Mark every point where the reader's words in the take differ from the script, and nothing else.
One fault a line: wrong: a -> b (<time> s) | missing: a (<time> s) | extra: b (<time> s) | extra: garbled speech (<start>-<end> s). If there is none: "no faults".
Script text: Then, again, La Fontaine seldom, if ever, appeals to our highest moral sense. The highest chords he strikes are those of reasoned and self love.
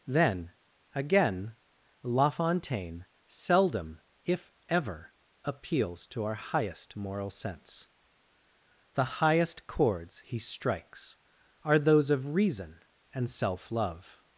wrong: reasoned -> reason (12.3 s)